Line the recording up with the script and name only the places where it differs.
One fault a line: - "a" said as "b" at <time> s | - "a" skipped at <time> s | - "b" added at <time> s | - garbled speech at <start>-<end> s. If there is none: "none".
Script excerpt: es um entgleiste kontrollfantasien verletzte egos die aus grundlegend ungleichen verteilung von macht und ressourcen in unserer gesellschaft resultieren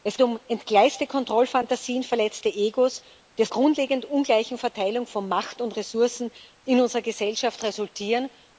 none